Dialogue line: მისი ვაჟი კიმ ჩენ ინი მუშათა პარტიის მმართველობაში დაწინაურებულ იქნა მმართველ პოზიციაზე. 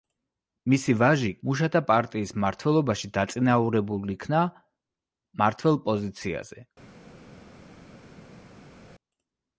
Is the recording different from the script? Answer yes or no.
yes